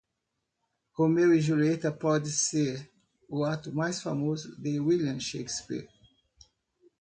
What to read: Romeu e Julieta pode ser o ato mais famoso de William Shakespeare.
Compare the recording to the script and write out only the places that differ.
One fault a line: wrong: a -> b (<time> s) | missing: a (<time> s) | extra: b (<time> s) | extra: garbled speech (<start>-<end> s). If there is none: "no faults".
no faults